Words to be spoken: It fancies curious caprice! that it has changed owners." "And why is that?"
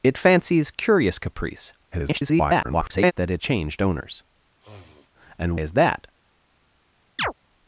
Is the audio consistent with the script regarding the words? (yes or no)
no